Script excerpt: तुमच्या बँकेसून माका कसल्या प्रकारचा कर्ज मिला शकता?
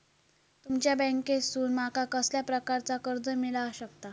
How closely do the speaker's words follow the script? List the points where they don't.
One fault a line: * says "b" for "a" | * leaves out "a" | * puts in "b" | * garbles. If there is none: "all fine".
all fine